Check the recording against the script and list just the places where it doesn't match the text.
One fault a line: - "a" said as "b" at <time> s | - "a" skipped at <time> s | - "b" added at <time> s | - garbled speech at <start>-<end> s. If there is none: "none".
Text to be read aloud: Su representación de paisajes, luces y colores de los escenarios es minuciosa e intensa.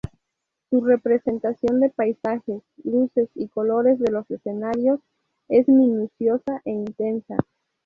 none